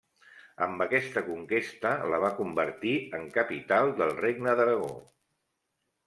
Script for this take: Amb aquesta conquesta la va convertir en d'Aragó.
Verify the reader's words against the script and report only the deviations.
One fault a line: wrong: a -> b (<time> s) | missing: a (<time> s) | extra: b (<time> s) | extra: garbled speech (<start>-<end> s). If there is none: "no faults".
extra: capital del Regne (3.4 s)